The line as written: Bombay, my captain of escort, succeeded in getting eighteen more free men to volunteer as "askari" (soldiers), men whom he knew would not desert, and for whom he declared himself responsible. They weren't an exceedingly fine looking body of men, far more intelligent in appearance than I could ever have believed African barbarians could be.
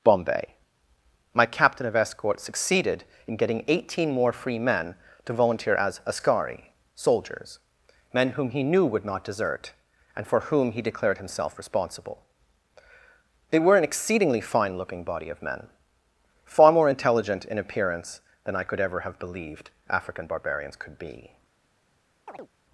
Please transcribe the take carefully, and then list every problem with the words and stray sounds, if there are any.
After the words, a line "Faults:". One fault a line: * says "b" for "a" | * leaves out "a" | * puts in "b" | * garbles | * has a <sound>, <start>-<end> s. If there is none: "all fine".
Bombay, my captain of escort, succeeded in getting eighteen more free men to volunteer as "askari" (soldiers), men whom he knew would not desert, and for whom he declared himself responsible. They were an exceedingly fine looking body of men, far more intelligent in appearance than I could ever have believed African barbarians could be.
Faults:
* says "were" for "weren't"
* has a chirp, 22.3-22.5 s